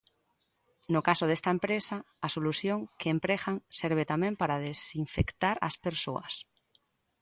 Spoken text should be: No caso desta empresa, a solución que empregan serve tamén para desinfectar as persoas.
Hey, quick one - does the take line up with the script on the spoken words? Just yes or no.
yes